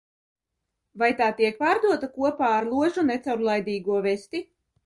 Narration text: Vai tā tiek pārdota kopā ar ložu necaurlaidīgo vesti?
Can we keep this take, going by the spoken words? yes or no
yes